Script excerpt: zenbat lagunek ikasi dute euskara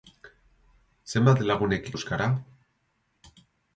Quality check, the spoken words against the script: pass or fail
fail